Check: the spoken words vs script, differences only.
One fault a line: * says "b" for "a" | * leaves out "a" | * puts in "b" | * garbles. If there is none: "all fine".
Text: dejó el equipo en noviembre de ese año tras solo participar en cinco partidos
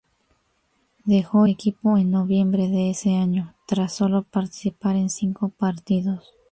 * leaves out "el"